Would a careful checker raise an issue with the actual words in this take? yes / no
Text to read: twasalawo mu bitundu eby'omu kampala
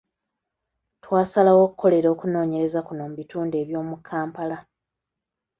yes